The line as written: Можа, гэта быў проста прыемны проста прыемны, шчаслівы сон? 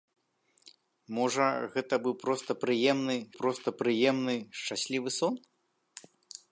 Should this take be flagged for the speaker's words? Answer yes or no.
no